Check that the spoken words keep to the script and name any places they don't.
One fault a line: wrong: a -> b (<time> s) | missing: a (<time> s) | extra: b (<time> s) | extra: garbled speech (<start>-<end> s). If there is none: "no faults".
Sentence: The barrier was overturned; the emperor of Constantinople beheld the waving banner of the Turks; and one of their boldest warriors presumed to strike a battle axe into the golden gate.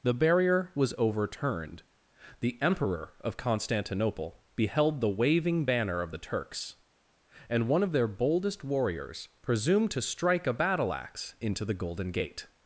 no faults